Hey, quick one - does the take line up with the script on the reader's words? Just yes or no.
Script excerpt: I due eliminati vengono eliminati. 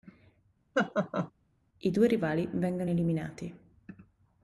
no